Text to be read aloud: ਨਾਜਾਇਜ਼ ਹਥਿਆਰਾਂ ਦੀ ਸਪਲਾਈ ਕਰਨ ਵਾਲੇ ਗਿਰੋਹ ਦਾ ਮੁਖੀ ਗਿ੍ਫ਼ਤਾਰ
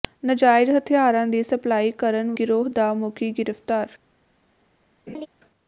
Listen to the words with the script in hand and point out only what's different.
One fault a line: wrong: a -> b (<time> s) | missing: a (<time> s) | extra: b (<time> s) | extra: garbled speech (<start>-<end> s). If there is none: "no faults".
missing: ਵਾਲੇ (2.3 s)